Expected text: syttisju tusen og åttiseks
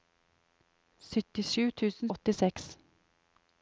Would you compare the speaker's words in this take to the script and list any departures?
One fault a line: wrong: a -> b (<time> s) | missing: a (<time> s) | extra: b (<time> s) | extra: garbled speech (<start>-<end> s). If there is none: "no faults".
no faults